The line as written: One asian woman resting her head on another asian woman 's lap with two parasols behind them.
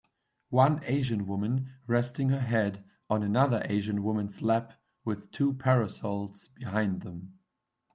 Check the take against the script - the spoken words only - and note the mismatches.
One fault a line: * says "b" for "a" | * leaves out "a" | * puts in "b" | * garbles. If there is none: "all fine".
all fine